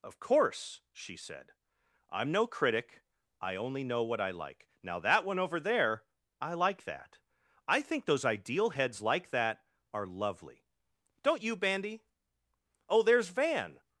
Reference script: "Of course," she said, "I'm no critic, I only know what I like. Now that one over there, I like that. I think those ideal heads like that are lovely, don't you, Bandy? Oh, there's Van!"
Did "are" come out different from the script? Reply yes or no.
no